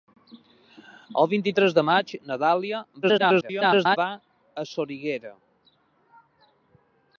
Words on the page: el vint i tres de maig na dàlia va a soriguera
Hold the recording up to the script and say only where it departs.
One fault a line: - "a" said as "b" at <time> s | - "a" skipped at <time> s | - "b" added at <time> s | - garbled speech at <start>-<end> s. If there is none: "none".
- garbled speech at 3.0-4.0 s